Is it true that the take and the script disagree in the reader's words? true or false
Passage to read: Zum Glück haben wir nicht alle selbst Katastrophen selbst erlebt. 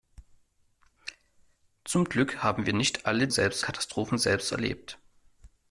false